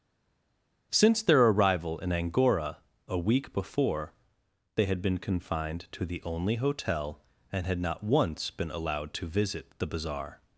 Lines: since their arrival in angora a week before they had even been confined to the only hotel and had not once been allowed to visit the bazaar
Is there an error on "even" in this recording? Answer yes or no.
yes